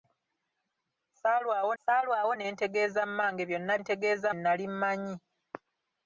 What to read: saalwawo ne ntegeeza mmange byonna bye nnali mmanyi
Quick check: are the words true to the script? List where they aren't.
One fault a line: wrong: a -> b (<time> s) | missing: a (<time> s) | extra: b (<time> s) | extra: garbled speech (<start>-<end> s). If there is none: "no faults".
extra: saalwawo (1.8 s)
wrong: bye -> ntegeeza (3.8 s)